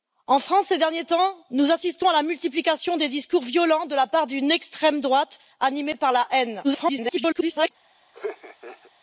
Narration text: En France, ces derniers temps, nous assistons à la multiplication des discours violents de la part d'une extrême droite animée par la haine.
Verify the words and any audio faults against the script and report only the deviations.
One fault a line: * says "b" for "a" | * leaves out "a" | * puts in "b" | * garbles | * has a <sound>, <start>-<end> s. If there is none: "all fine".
* garbles
* has a laugh, 8.1-8.9 s